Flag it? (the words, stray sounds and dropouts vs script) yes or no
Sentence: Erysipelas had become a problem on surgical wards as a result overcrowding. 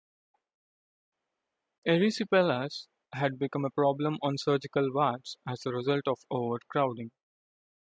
yes